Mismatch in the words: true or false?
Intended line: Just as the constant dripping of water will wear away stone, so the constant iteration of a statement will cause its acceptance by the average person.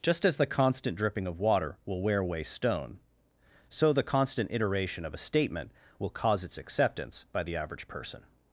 false